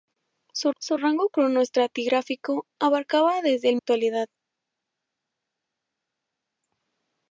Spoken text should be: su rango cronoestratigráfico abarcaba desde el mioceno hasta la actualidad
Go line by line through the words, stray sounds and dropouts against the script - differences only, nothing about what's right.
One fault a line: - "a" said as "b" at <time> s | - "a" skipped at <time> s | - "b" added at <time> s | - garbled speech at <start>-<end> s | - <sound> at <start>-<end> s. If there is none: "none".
- "su" added at 0.8 s
- "mioceno hasta la" skipped at 3.8 s